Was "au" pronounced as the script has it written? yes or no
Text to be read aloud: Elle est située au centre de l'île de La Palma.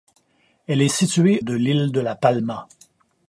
no